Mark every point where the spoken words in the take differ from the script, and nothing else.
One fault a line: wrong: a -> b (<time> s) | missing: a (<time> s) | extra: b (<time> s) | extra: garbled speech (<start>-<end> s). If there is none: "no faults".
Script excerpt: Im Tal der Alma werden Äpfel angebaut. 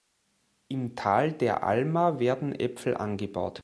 no faults